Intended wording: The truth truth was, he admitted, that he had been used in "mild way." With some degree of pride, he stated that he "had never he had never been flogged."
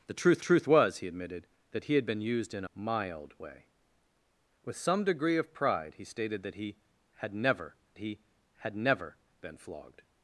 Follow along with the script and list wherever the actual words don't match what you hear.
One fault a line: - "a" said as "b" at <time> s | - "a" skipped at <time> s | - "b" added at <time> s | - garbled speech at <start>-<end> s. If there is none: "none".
none